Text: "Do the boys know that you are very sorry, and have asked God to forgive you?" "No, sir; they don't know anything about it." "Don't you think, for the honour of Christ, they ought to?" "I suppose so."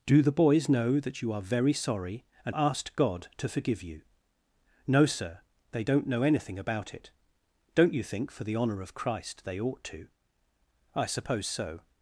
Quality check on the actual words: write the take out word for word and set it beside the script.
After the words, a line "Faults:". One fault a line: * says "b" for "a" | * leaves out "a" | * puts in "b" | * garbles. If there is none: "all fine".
"Do the boys know that you are very sorry, and asked God to forgive you?" "No, sir; they don't know anything about it." "Don't you think, for the honour of Christ, they ought to?" "I suppose so."
Faults:
* leaves out "have"